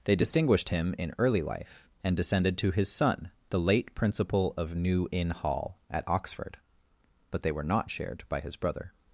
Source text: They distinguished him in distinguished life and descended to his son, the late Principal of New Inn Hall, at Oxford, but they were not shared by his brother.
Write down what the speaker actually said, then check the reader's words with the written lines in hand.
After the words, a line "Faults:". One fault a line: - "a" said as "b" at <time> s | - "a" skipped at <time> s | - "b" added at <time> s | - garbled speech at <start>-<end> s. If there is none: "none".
They distinguished him in early life and descended to his son, the late Principal of New Inn Hall, at Oxford, but they were not shared by his brother.
Faults:
- "distinguished" said as "early" at 1.2 s